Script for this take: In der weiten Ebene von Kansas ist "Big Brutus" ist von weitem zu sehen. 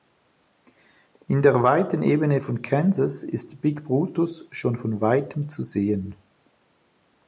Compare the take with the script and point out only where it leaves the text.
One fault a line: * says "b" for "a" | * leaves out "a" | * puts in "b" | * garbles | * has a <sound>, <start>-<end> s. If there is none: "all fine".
* says "schon" for "ist"